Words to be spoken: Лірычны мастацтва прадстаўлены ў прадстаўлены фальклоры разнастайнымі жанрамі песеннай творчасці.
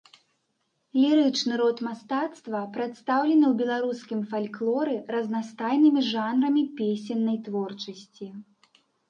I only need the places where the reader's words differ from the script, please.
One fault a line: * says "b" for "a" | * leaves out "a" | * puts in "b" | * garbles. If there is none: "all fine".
* puts in "род"
* says "беларускім" for "прадстаўлены"